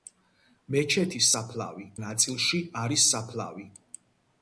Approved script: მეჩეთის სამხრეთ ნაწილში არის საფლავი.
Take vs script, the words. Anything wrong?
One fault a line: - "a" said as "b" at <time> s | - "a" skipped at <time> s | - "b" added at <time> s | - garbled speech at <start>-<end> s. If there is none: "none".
- "სამხრეთ" said as "საფლავი" at 1.3 s